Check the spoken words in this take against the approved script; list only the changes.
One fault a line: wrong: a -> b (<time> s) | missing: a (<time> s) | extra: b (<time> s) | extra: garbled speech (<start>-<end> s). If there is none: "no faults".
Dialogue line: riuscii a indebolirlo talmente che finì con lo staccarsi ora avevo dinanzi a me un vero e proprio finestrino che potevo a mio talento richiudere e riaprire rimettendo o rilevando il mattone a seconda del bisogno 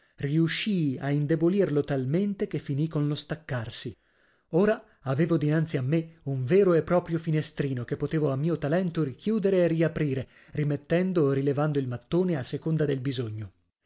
no faults